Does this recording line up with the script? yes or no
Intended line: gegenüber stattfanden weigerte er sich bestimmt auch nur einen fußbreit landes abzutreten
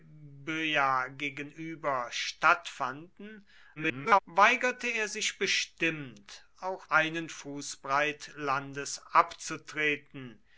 no